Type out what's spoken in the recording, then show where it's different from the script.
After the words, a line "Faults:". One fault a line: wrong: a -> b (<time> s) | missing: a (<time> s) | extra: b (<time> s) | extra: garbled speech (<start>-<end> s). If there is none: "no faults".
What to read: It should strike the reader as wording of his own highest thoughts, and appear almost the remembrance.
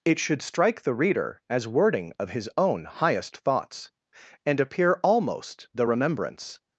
It should strike the reader as wording of his own highest thoughts, and appear almost the remembrance.
Faults:
no faults